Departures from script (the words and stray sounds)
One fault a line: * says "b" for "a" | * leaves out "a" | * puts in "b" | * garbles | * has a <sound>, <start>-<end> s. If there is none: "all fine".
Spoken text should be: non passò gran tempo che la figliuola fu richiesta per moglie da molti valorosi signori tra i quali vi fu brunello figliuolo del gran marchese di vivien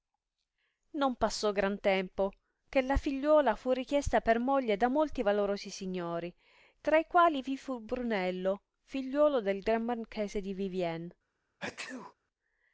* has a sneeze, 11.6-12.1 s